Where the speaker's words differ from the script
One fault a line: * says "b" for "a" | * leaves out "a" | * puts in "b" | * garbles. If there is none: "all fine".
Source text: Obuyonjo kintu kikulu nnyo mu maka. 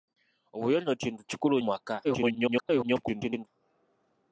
* leaves out "nnyo"
* garbles